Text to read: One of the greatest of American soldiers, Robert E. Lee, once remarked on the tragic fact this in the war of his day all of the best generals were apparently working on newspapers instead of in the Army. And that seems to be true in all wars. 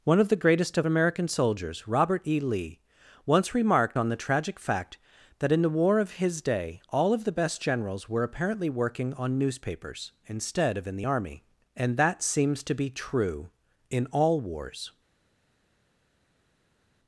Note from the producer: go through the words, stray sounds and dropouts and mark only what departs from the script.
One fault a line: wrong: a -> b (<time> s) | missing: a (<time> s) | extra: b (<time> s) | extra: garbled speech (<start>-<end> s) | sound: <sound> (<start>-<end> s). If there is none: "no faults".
wrong: this -> that (5.4 s)